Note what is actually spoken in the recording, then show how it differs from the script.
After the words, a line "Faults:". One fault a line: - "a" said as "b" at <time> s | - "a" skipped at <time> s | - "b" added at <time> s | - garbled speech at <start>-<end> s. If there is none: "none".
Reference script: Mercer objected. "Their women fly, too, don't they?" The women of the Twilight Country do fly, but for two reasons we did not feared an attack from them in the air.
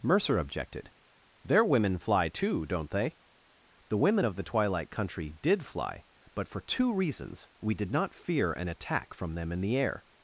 Mercer objected. "Their women fly, too, don't they?" The women of the Twilight Country did fly, but for two reasons we did not fear an attack from them in the air.
Faults:
- "do" said as "did" at 5.4 s
- "feared" said as "fear" at 8.1 s